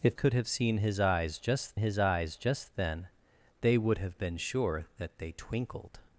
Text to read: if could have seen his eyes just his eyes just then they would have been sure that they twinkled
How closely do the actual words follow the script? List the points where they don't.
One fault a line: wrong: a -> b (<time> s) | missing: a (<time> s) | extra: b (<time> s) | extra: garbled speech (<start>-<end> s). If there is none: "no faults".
no faults